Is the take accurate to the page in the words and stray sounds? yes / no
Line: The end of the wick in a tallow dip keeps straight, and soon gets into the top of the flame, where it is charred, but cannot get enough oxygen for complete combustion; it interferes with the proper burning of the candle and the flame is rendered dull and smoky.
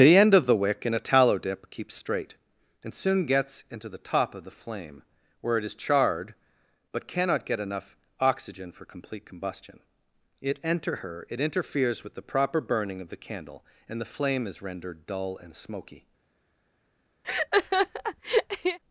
no